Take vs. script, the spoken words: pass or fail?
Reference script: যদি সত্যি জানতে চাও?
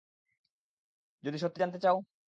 pass